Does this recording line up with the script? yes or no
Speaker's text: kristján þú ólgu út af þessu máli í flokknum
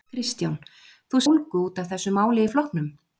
yes